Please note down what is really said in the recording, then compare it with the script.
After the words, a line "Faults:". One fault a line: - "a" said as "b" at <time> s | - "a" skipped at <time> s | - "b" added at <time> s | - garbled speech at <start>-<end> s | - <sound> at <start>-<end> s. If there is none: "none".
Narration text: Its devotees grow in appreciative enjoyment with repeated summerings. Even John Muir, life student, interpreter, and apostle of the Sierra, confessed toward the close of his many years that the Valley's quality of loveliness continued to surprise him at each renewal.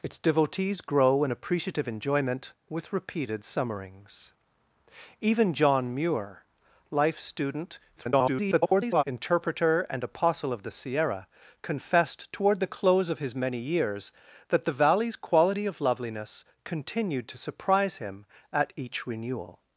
Its devotees grow in appreciative enjoyment with repeated summerings. Even John Muir, life student, [garbled] interpreter, and apostle of the Sierra, confessed toward the close of his many years that the Valley's quality of loveliness continued to surprise him at each renewal.
Faults:
- garbled speech at 8.0-9.0 s